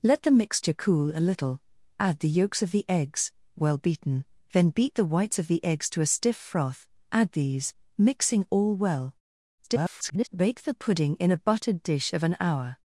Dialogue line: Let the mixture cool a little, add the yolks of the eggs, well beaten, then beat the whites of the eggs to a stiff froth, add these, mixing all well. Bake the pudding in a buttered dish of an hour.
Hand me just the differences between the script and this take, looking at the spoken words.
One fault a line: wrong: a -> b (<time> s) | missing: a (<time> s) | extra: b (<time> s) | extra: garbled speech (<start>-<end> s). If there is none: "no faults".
extra: garbled speech (9.6-10.3 s)